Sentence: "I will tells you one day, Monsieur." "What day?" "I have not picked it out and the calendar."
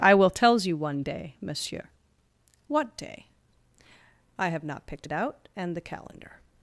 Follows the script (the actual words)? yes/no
yes